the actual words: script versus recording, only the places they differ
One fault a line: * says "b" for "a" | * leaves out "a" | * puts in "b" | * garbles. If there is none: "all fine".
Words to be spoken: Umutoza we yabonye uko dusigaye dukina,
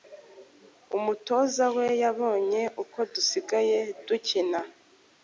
all fine